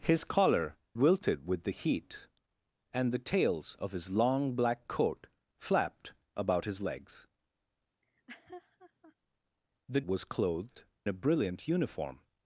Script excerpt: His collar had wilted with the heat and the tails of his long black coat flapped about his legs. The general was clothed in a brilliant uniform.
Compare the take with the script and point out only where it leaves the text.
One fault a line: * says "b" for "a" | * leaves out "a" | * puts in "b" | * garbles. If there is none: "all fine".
* leaves out "had"
* leaves out "general"
* leaves out "in"